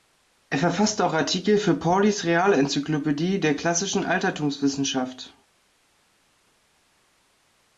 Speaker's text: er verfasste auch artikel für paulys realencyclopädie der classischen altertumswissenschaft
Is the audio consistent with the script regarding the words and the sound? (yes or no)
yes